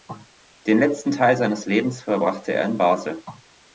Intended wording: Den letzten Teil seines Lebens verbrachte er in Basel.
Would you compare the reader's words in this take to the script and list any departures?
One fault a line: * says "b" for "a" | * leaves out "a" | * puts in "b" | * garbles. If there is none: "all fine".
all fine